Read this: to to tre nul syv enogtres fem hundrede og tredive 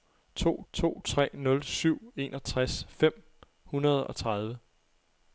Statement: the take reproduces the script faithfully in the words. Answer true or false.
true